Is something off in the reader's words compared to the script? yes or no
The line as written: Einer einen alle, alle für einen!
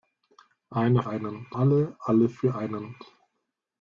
no